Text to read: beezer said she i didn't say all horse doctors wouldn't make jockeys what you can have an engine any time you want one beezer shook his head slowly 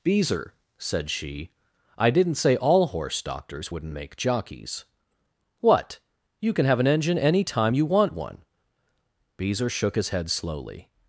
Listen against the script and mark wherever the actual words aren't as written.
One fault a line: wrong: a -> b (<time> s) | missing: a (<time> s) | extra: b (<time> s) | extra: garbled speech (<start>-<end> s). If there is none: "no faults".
no faults